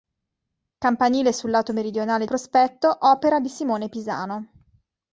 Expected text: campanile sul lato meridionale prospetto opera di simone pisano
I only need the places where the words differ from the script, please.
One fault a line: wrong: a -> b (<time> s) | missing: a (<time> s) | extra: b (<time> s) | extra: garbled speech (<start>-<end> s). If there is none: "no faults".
no faults